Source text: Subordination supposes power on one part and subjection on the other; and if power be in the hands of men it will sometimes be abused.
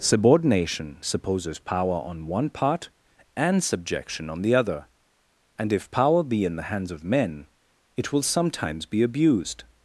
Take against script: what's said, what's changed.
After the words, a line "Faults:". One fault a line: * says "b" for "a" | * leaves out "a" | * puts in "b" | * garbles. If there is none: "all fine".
Subordination supposes power on one part and subjection on the other; and if power be in the hands of men it will sometimes be abused.
Faults:
all fine